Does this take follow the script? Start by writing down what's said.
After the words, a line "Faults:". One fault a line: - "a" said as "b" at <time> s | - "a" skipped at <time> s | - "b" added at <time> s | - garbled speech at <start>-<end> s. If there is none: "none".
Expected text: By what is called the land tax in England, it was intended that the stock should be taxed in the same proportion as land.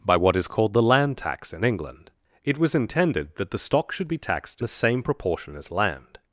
By what is called the land tax in England, it was intended that the stock should be taxed the same proportion as land.
Faults:
- "in" skipped at 4.6 s